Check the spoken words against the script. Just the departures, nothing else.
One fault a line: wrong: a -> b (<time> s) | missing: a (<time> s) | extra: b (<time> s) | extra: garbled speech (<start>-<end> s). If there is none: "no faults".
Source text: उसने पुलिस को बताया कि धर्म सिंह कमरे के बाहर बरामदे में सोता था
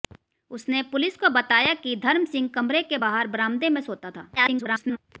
extra: garbled speech (4.4-5.0 s)